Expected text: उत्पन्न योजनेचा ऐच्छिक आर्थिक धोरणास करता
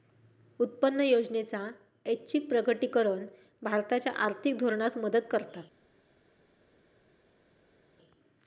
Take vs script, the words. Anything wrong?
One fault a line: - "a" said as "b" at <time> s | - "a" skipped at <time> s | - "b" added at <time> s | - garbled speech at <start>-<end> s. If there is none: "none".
- "प्रकटीकरण भारताच्या" added at 2.5 s
- "मदत" added at 5.0 s